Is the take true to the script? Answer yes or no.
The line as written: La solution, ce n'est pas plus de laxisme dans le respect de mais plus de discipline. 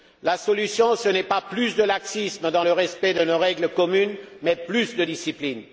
no